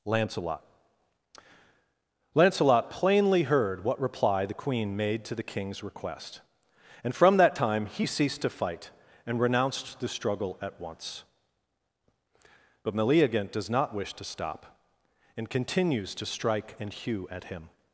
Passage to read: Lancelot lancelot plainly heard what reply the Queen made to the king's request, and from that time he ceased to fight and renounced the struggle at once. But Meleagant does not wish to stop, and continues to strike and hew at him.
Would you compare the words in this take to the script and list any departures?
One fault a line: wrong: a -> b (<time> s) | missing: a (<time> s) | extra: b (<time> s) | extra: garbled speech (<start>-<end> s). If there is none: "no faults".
no faults